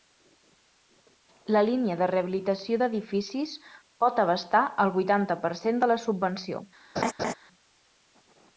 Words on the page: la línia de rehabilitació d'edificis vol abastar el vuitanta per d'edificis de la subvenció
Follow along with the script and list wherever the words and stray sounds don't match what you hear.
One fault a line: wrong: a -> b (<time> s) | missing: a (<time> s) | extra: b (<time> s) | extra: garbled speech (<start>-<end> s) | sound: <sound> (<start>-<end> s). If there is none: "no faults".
wrong: vol -> pot (4.1 s)
wrong: d'edificis -> cent (5.7 s)
sound: laugh (7.0-7.3 s)